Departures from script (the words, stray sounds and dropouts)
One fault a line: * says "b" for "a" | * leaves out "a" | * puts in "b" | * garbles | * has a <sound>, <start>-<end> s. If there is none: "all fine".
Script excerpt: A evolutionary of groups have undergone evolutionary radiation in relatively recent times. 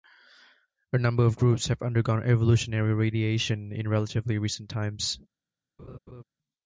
* says "number" for "evolutionary"
* has a laugh, 5.8-6.2 s